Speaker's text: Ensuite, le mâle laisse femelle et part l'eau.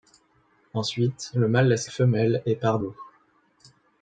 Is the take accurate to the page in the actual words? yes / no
yes